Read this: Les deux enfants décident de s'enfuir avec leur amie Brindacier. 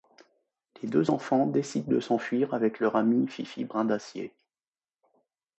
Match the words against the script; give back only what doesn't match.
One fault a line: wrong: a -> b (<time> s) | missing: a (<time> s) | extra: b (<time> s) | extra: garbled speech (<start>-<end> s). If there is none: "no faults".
extra: Fifi (3.3 s)